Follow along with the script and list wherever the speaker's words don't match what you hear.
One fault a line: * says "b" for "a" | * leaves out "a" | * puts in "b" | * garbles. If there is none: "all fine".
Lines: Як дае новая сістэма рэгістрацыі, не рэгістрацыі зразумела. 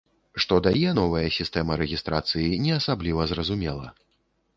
* says "Што" for "Як"
* says "асабліва" for "рэгістрацыі"